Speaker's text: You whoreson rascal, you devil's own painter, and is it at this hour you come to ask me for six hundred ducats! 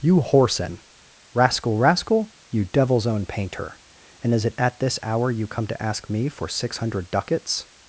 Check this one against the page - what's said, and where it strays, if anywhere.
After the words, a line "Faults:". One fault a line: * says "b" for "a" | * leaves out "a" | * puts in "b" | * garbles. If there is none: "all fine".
You whoreson rascal rascal, you devil's own painter, and is it at this hour you come to ask me for six hundred ducats!
Faults:
* puts in "rascal"